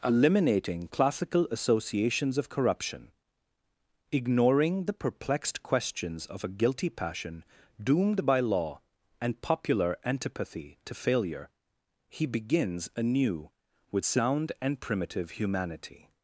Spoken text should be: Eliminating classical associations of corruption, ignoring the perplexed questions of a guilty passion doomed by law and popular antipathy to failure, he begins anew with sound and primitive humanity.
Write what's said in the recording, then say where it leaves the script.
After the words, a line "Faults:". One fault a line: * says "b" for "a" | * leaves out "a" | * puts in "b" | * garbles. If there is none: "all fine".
Eliminating classical associations of corruption, ignoring the perplexed questions of a guilty passion doomed by law and popular antipathy to failure, he begins anew with sound and primitive humanity.
Faults:
all fine